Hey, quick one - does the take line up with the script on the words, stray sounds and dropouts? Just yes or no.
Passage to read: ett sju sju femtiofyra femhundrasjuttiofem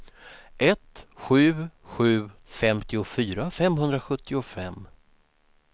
yes